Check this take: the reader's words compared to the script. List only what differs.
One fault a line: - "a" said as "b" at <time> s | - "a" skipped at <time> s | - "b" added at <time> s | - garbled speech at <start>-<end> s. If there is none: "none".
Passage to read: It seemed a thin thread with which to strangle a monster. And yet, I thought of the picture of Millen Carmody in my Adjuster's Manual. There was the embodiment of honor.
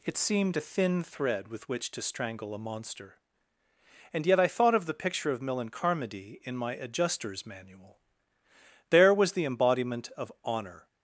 none